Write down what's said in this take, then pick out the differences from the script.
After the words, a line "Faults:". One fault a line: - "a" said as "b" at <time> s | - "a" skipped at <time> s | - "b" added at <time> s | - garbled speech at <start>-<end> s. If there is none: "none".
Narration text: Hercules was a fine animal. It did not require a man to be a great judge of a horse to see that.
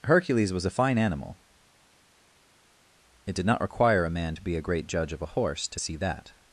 Hercules was a fine animal. It did not require a man to be a great judge of a horse to see that.
Faults:
none